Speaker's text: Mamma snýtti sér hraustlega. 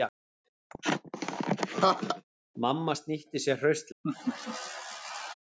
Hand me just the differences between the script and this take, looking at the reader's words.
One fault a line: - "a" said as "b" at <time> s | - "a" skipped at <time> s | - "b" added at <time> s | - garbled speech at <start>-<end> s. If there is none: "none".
none